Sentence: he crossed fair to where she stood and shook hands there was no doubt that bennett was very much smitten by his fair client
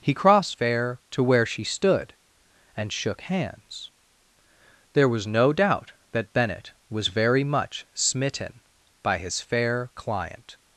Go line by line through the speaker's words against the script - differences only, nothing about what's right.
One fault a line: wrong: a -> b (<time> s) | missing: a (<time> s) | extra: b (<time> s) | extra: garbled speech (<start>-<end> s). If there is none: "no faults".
no faults